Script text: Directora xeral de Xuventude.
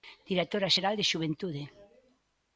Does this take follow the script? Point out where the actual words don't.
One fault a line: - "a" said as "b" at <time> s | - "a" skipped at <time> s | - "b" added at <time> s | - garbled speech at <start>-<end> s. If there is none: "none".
none